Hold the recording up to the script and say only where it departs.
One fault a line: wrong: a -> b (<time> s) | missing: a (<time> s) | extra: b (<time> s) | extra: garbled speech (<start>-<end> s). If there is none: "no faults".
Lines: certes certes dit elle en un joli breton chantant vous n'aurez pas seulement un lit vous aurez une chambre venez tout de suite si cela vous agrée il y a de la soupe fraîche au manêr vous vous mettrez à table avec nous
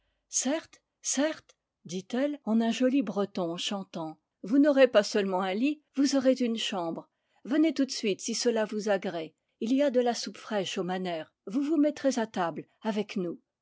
no faults